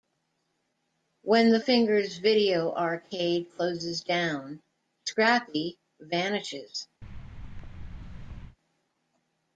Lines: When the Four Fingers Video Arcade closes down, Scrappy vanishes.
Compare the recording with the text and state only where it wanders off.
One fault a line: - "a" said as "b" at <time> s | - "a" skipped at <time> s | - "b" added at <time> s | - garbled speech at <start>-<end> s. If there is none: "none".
- "Four" skipped at 1.6 s